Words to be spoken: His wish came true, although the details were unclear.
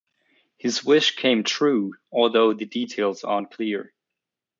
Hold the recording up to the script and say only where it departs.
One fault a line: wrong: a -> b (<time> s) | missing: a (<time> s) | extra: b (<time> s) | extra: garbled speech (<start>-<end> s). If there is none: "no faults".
wrong: were -> are (3.2 s)